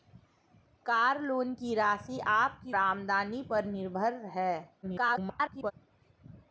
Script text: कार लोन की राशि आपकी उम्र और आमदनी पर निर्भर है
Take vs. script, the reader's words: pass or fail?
fail